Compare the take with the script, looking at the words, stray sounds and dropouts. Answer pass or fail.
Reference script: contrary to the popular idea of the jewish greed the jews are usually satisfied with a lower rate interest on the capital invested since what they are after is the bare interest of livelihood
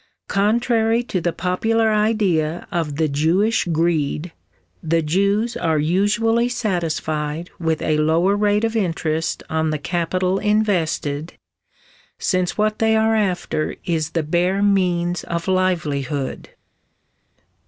fail